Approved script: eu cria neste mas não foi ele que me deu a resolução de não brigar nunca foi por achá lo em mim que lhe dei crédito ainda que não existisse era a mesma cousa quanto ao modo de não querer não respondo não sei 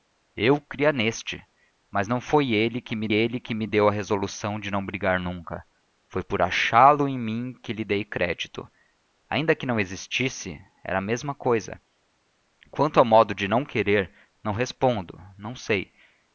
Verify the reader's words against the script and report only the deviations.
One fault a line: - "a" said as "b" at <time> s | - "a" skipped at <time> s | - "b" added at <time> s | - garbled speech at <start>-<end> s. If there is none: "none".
- "ele que me" added at 3.1 s